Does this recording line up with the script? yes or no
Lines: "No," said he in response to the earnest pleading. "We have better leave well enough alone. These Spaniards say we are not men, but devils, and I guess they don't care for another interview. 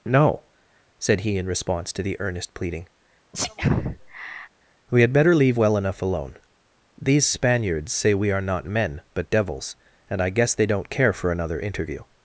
no